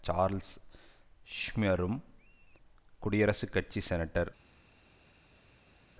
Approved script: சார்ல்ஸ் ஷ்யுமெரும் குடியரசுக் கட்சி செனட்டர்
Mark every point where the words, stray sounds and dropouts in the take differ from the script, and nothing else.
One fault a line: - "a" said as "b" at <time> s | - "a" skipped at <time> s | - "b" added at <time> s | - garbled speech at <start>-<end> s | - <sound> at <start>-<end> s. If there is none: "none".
none